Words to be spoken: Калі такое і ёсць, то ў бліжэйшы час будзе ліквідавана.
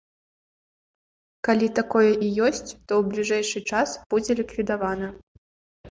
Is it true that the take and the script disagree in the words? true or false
false